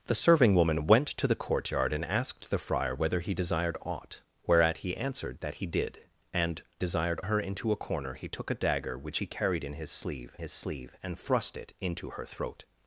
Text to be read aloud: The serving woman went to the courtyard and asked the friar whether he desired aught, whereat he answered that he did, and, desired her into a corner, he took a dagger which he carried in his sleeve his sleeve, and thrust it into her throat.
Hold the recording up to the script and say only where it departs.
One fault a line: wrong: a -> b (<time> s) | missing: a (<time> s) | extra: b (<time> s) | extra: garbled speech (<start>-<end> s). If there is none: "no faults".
no faults